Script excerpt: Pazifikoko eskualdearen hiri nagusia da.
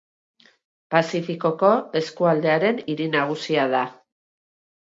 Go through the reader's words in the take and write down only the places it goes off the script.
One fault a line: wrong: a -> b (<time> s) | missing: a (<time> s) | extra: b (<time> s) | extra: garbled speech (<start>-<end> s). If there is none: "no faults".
no faults